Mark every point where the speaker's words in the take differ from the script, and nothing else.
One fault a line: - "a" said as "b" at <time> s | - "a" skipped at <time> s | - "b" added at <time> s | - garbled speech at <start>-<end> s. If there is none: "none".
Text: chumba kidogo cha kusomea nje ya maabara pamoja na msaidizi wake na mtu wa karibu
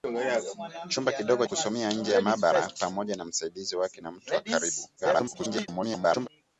- "cha" skipped at 1.4 s
- garbled speech at 5.0-6.3 s